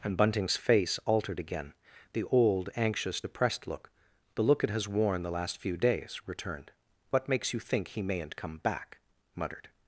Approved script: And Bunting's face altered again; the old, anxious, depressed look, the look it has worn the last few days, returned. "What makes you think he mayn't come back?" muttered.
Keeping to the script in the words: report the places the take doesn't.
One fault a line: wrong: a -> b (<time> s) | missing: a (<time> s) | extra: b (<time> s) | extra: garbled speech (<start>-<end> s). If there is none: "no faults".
no faults